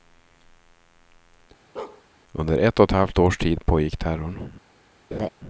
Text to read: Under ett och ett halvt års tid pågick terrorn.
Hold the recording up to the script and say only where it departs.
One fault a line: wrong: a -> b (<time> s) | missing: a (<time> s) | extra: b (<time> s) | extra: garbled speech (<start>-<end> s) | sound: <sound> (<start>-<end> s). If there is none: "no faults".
sound: bark (1.8-2.0 s)
sound: laugh (5.1-5.3 s)